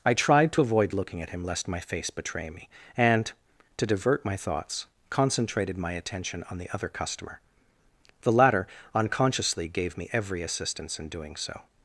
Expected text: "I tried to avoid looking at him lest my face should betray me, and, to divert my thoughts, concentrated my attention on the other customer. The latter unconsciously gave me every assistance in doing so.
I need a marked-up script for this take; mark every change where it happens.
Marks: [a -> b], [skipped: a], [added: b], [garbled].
"I tried to avoid looking at him lest my face [skipped: should] betray me, and, to divert my thoughts, concentrated my attention on the other customer. The latter unconsciously gave me every assistance in doing so.